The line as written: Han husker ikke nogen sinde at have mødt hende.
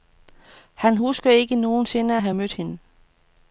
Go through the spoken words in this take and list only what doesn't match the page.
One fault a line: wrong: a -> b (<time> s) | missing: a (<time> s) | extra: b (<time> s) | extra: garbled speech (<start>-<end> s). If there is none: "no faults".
no faults